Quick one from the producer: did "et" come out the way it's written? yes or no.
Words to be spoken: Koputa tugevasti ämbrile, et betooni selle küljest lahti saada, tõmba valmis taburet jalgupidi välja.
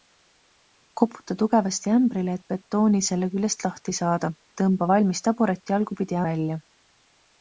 yes